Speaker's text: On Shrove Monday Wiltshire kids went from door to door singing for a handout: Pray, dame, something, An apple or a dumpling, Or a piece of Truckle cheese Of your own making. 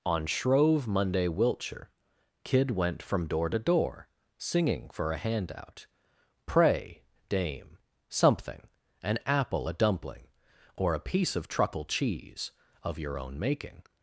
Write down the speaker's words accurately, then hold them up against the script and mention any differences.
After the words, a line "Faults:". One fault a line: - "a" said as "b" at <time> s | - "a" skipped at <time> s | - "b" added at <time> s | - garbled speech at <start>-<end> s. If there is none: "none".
On Shrove Monday Wiltshire kid went from door to door singing for a handout: Pray, dame, something, An apple a dumpling, Or a piece of Truckle cheese Of your own making.
Faults:
- "kids" said as "kid" at 2.4 s
- "or" skipped at 9.7 s